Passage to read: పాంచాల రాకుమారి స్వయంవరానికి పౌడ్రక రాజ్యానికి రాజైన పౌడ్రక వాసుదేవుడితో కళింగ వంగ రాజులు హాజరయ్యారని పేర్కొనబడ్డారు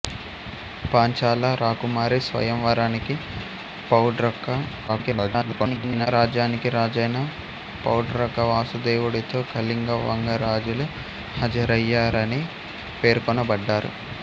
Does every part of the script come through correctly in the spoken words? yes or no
no